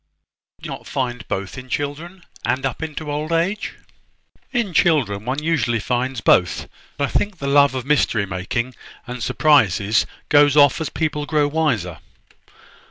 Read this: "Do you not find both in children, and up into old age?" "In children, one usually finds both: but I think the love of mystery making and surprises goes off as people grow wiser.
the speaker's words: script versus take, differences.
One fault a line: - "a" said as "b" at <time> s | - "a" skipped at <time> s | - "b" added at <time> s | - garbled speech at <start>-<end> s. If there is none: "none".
- "you" skipped at 0.7 s
- "but" skipped at 6.7 s